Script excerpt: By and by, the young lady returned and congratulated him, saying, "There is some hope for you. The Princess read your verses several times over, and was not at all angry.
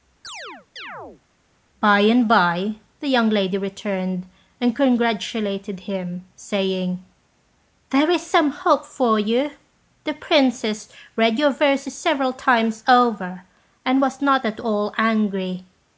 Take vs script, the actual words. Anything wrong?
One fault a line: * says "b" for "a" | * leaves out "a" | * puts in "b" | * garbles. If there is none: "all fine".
all fine